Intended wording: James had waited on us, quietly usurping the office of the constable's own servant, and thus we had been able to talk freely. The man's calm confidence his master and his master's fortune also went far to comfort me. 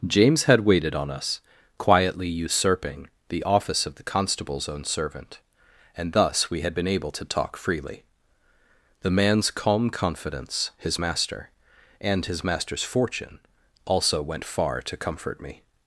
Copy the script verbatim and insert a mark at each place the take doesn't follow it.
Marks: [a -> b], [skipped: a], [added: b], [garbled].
James had waited on us, quietly usurping the office of the constable's own servant, and thus we had been able to talk freely. The man's calm confidence his master and his master's fortune also went far to comfort me.